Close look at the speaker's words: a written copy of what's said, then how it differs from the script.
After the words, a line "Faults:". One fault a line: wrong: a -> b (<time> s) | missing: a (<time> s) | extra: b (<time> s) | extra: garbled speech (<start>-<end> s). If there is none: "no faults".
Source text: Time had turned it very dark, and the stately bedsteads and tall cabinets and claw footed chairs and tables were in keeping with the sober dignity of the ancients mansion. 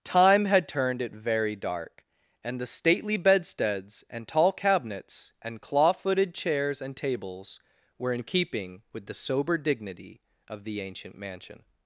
Time had turned it very dark, and the stately bedsteads and tall cabinets and claw footed chairs and tables were in keeping with the sober dignity of the ancient mansion.
Faults:
wrong: ancients -> ancient (10.8 s)